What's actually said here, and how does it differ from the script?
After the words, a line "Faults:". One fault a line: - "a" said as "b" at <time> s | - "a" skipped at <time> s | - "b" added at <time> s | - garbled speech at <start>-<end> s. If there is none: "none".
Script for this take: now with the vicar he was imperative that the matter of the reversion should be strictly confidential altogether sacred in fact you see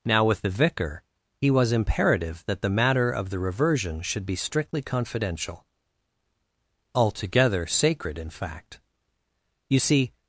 now with the vicar he was imperative that the matter of the reversion should be strictly confidential altogether sacred in fact you see
Faults:
none